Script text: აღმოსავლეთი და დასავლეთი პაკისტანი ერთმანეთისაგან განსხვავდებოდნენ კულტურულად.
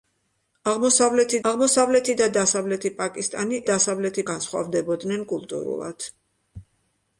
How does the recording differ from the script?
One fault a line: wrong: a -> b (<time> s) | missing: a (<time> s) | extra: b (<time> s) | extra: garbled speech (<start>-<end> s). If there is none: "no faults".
extra: აღმოსავლეთი (1.5 s)
wrong: ერთმანეთისაგან -> დასავლეთი (3.7 s)